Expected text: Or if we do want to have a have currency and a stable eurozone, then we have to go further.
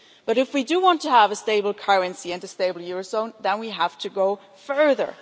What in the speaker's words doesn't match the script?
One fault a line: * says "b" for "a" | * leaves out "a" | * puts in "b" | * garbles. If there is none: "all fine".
* says "But" for "Or"
* says "stable" for "have"